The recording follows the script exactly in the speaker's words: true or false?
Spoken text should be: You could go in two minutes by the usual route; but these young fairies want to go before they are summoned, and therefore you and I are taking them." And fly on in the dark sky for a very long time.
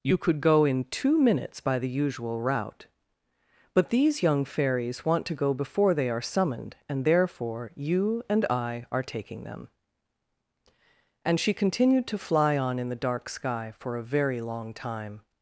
false